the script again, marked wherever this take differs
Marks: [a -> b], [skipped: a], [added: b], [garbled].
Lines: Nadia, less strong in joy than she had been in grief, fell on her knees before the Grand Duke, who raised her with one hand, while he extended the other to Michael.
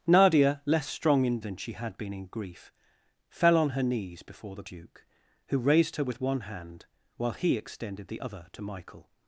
Nadia, less strong in [skipped: joy] than she had been in grief, fell on her knees before the [skipped: Grand] Duke, who raised her with one hand, while he extended the other to Michael.